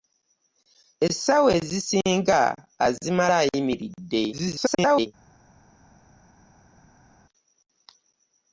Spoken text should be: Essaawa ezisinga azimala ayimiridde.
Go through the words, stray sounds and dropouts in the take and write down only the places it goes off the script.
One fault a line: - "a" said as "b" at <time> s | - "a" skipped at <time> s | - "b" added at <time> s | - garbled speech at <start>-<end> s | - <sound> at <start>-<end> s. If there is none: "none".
- garbled speech at 4.3-5.1 s